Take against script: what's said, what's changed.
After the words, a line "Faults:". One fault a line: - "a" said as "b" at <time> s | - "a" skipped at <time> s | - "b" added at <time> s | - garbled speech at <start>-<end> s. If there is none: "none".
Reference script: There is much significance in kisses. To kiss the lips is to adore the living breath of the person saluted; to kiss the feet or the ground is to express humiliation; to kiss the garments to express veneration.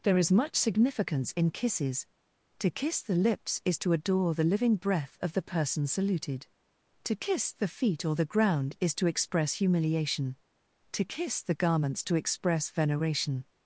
There is much significance in kisses. To kiss the lips is to adore the living breath of the person saluted; to kiss the feet or the ground is to express humiliation; to kiss the garments to express veneration.
Faults:
none